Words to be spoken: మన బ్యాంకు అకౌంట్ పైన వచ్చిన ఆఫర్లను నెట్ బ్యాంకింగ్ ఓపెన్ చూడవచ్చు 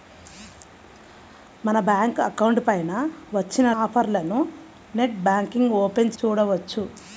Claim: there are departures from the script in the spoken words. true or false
false